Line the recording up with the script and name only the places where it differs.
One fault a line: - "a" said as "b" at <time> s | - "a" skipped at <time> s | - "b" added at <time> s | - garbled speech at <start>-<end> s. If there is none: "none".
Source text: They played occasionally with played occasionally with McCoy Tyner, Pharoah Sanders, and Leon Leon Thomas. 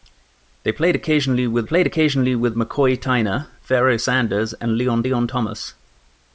none